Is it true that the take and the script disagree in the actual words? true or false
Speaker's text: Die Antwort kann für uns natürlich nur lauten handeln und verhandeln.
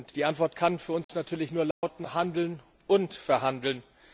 false